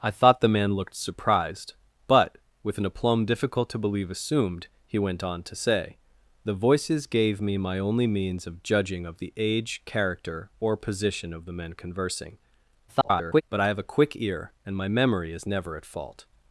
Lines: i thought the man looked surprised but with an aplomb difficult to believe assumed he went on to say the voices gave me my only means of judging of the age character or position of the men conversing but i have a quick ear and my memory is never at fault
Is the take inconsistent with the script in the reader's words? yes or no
yes